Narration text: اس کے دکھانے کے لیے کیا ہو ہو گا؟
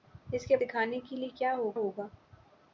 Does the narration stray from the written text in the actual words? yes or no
no